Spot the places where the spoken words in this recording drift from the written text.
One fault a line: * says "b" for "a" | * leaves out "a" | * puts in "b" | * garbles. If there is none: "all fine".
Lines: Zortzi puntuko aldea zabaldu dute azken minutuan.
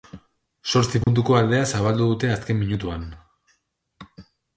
all fine